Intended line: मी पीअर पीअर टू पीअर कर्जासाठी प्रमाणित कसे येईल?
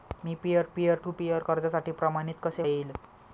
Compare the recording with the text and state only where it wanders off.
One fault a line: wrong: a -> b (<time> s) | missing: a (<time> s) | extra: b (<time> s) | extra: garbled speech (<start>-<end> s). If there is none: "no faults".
no faults